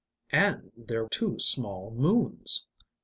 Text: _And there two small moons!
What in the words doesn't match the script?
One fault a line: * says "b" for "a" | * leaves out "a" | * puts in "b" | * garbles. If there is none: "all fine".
all fine